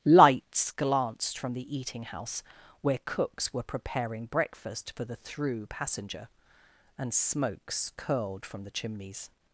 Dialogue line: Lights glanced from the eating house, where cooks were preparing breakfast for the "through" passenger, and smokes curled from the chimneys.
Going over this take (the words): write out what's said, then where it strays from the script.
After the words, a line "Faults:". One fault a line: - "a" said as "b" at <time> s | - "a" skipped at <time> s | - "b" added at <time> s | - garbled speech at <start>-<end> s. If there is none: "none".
Lights glanced from the eating house, where cooks were preparing breakfast for the "through" passenger, and smokes curled from the chimneys.
Faults:
none